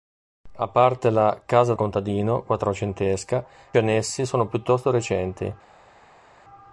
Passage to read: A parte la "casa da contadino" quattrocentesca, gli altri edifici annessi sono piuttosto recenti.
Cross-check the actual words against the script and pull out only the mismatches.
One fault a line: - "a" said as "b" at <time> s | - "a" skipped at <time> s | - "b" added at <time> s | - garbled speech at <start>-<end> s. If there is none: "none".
- "da" skipped at 1.8 s
- "gli altri edifici" skipped at 3.4 s